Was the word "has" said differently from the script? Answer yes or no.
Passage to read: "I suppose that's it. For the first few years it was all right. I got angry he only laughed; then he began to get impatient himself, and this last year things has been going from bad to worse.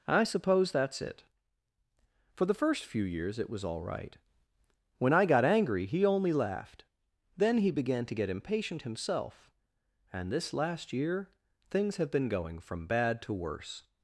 yes